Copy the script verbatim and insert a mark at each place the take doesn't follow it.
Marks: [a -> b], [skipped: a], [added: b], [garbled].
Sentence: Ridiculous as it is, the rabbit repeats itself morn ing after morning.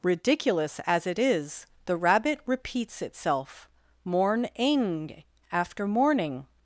Ridiculous as it is, the rabbit repeats itself morn ing after morning.